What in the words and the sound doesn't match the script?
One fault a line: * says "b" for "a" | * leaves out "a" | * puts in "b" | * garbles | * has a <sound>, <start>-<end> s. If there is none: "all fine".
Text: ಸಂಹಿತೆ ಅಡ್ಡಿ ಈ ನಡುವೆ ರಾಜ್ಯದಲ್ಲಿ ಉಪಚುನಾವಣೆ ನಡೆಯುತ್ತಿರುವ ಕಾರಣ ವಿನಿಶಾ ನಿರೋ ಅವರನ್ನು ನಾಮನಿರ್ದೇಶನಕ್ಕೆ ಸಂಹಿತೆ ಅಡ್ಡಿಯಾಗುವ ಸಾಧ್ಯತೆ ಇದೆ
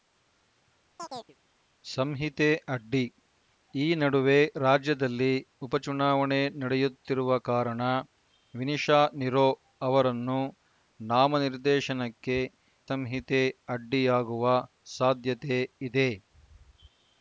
* has a chirp, 1.0-1.4 s